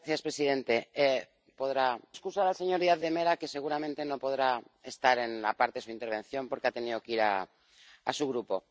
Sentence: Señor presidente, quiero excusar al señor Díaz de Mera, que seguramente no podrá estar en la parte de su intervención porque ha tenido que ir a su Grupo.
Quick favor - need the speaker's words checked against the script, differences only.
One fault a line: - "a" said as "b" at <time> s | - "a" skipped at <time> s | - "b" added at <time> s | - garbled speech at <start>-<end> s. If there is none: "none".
- "quiero" said as "podrá" at 1.6 s